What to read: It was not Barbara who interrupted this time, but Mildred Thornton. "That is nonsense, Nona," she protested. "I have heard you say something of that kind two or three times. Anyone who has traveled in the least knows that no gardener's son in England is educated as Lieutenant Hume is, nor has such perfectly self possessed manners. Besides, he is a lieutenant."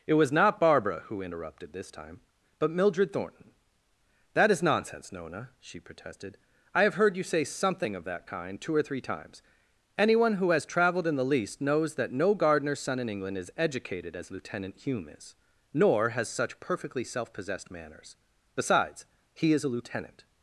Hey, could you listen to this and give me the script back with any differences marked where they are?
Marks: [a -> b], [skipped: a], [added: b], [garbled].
It was not Barbara who interrupted this time, but Mildred Thornton. "That is nonsense, Nona," she protested. "I have heard you say something of that kind two or three times. Anyone who has traveled in the least knows that no gardener's son in England is educated as Lieutenant Hume is, nor has such perfectly self possessed manners. Besides, he is a lieutenant."